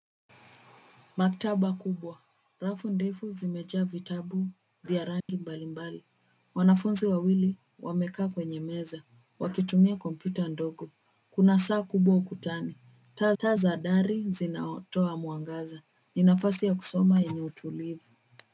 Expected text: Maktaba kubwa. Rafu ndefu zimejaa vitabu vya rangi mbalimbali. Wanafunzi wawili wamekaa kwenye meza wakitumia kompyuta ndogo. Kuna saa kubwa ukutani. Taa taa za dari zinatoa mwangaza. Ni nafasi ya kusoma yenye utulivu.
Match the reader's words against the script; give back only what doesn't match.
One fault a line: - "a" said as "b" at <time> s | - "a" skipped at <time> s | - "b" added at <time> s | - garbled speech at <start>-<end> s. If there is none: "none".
none